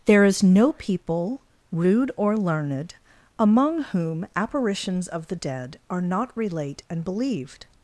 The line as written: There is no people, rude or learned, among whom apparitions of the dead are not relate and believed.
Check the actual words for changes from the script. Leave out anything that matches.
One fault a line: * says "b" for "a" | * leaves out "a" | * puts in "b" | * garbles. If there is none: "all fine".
all fine